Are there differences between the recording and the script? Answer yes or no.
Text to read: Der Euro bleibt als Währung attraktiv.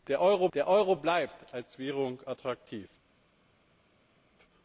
yes